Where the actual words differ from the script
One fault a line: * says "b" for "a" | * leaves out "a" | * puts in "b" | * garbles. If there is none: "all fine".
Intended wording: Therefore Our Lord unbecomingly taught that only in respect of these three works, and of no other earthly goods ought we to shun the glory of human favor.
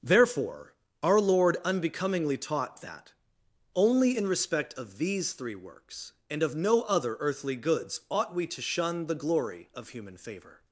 all fine